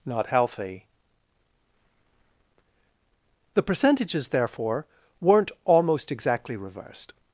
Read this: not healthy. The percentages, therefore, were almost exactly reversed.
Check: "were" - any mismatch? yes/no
yes